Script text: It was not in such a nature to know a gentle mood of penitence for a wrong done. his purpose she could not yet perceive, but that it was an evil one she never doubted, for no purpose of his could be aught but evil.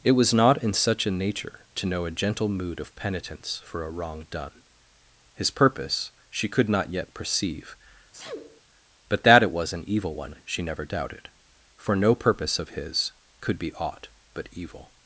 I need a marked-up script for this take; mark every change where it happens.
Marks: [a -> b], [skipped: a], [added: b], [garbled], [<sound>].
It was not in such a nature to know a gentle mood of penitence for a wrong done. his purpose she could not yet perceive, [sneeze] but that it was an evil one she never doubted, for no purpose of his could be aught but evil.